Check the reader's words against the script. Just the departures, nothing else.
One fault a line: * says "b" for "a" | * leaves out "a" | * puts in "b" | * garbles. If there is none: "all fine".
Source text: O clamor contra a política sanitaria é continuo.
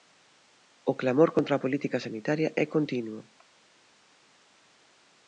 all fine